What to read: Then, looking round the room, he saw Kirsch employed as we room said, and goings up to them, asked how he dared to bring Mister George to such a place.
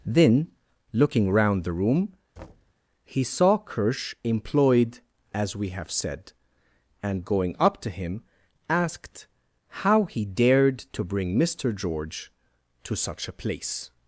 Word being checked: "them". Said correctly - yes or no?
no